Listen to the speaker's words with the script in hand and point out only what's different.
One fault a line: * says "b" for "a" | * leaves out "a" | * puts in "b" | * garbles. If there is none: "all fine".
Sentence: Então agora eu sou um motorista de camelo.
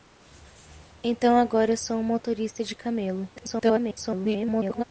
* garbles